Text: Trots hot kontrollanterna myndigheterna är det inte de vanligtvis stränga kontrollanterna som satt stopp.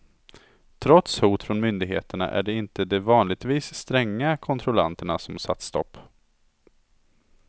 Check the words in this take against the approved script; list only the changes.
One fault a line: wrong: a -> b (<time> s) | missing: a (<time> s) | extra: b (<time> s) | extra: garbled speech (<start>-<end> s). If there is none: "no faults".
wrong: kontrollanterna -> från (1.4 s)